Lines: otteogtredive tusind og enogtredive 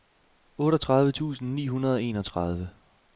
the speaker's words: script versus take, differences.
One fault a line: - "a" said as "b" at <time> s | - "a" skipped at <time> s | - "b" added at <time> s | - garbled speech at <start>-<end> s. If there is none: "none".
- "ni hundrede" added at 1.5 s